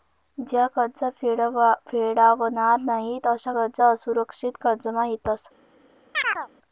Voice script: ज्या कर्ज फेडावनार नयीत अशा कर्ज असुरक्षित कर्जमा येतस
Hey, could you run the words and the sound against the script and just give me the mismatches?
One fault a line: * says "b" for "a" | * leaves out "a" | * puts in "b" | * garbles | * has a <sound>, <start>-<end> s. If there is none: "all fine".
* has a chirp, 6.1-6.5 s